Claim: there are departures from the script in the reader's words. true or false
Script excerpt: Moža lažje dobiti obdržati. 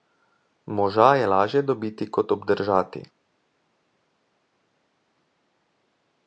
true